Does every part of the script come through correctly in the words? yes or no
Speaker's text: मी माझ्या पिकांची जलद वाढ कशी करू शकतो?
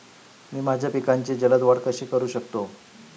yes